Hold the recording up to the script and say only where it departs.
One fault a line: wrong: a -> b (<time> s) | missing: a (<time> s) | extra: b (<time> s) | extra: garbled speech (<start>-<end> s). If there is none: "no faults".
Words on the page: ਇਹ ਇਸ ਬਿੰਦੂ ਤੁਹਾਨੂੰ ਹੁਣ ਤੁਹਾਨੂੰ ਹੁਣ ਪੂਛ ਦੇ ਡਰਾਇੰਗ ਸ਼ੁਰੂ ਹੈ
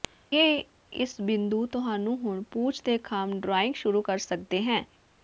missing: ਤੁਹਾਨੂੰ ਹੁਣ (2.4 s)
extra: ਖੰਭ (3.0 s)
extra: ਕਰ ਸਕਦੇ (4.0 s)